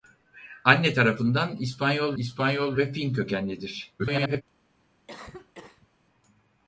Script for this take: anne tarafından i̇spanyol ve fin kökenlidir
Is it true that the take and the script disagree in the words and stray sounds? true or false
true